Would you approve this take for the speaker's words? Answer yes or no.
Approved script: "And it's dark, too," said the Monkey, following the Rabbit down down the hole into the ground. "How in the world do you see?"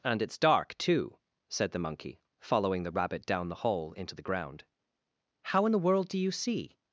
no